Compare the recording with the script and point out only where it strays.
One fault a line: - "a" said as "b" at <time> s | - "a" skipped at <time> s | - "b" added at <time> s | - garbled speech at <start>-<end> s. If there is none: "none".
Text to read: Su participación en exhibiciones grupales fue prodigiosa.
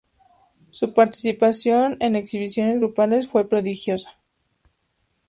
none